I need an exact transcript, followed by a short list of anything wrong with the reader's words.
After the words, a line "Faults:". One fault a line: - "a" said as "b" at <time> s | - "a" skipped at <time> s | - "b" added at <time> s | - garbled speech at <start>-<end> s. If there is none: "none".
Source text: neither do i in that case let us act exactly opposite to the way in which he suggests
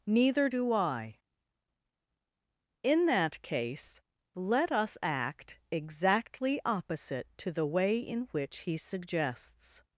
neither do i in that case let us act exactly opposite to the way in which he suggests
Faults:
none